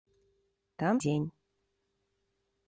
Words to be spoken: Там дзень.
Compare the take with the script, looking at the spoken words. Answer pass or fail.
pass